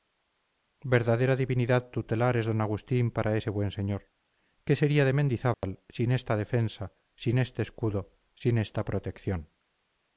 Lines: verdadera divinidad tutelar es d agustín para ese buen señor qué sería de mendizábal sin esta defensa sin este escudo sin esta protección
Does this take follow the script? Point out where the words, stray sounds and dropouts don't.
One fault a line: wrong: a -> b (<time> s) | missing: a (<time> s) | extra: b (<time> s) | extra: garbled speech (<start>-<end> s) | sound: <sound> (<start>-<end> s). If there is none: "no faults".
sound: dropout (5.5-5.6 s)